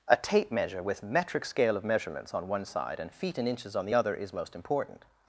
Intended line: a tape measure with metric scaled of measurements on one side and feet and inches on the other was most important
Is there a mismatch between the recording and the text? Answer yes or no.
yes